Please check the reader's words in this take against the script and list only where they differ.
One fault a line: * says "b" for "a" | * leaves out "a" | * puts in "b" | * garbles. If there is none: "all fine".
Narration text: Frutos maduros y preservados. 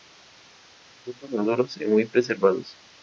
* puts in "muy"